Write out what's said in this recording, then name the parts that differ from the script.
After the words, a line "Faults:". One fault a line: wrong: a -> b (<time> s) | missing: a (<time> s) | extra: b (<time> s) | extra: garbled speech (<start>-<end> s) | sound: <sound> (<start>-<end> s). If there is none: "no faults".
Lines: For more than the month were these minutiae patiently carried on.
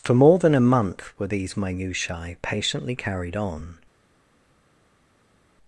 For more than a month were these minutiae patiently carried on.
Faults:
wrong: the -> a (0.6 s)